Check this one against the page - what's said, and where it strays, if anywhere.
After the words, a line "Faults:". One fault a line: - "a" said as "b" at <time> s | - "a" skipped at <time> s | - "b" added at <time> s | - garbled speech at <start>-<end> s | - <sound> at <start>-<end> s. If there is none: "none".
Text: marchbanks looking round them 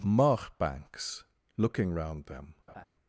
marchbanks looking round them
Faults:
- laugh at 2.7-2.9 s